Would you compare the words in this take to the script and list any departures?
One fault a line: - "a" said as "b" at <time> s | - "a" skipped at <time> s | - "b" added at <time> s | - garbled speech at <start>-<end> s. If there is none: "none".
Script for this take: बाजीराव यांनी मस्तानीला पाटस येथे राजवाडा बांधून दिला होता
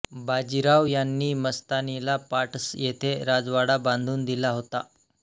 none